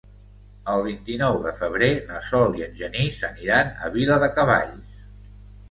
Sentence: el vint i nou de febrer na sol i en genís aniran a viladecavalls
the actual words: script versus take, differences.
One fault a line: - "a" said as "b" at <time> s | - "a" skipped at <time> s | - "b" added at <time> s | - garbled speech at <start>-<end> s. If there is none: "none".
none